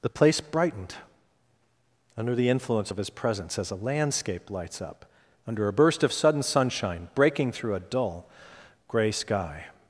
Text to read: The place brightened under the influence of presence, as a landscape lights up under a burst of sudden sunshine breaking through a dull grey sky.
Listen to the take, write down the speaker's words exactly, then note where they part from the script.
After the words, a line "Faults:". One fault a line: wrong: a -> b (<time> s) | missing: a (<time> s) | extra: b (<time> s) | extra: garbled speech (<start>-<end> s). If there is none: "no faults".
The place brightened under the influence of his presence, as a landscape lights up under a burst of sudden sunshine breaking through a dull grey sky.
Faults:
extra: his (3.0 s)